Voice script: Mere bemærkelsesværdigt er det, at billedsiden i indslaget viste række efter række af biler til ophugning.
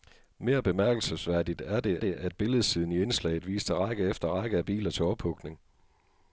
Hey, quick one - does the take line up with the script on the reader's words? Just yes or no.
no